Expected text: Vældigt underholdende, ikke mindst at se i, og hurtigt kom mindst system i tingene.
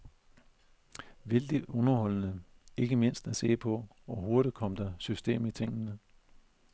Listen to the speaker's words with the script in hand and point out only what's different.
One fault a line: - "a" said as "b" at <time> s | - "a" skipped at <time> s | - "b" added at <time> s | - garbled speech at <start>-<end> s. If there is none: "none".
- "i" said as "på" at 3.6 s
- "mindst" said as "der" at 4.8 s